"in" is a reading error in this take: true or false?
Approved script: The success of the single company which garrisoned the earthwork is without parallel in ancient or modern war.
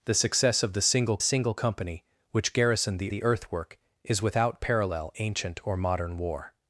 true